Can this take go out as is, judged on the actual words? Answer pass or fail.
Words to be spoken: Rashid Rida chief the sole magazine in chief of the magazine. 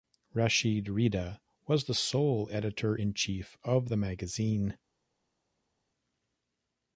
fail